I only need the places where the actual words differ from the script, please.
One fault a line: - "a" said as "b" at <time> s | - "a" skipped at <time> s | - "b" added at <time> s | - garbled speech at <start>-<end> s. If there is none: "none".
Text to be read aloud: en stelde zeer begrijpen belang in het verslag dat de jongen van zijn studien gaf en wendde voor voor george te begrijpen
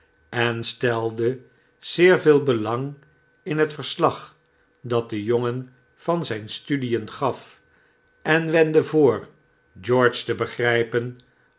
- "begrijpen" said as "veel" at 2.2 s
- "voor" skipped at 9.3 s